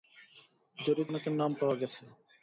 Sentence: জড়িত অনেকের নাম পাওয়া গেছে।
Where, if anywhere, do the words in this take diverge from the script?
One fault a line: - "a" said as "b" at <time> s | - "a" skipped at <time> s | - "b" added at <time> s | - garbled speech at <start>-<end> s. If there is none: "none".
none